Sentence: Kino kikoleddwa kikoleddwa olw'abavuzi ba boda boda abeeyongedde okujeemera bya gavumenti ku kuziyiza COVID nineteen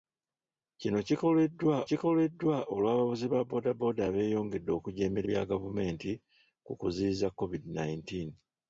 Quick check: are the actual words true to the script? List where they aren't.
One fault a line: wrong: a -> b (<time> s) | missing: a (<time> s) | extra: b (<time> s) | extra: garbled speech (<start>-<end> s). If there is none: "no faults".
no faults